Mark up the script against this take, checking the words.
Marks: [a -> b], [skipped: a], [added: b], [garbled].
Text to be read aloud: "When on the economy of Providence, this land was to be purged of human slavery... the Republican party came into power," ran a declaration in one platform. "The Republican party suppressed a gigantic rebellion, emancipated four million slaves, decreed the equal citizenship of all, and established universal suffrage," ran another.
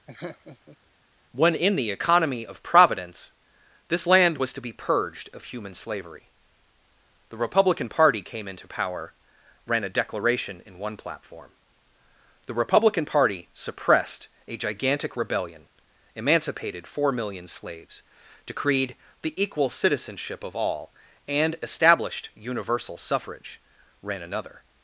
"When [on -> in] the economy of Providence, this land was to be purged of human slavery... the Republican party came into power," ran a declaration in one platform. "The Republican party suppressed a gigantic rebellion, emancipated four million slaves, decreed the equal citizenship of all, and established universal suffrage," ran another.